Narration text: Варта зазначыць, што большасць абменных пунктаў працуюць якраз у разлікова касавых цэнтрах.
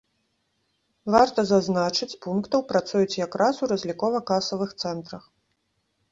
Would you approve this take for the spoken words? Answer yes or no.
no